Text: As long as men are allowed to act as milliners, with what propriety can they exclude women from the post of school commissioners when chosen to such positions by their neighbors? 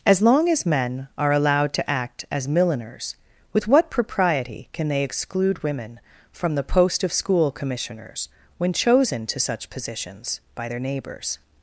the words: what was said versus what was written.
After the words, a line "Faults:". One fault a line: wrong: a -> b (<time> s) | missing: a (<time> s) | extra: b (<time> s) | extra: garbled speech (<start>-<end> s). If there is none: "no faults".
As long as men are allowed to act as milliners, with what propriety can they exclude women from the post of school commissioners when chosen to such positions by their neighbors?
Faults:
no faults